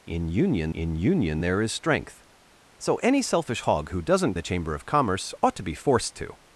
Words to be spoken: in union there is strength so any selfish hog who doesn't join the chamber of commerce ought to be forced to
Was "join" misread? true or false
true